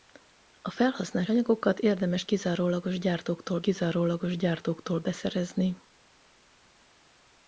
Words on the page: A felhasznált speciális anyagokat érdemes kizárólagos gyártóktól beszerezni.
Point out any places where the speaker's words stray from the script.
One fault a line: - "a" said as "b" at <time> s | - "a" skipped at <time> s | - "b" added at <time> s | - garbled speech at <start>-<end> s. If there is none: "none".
- "speciális" skipped at 1.3 s
- "kizárólagos gyártóktól" added at 3.6 s